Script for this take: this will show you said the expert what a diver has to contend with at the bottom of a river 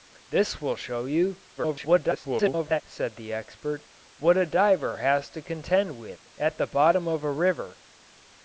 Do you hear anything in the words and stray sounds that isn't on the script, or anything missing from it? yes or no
yes